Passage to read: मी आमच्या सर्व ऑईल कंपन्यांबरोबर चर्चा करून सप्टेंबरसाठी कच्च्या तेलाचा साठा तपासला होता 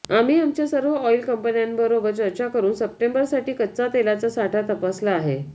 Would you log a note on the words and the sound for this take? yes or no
yes